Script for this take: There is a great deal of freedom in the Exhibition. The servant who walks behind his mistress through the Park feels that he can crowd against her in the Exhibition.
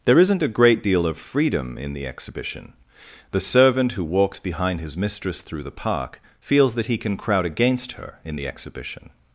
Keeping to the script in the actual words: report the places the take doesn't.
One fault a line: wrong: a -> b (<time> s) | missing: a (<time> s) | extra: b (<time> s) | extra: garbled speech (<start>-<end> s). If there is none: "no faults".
wrong: is -> isn't (0.2 s)